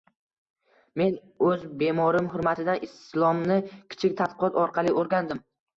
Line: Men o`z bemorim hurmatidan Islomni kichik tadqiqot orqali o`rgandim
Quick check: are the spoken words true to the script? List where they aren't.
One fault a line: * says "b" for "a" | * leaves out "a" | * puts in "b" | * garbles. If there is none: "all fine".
all fine